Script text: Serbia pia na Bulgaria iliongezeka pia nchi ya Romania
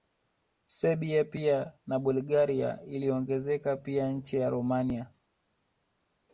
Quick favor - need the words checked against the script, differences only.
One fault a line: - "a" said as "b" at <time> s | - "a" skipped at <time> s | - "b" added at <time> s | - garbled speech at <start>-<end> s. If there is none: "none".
none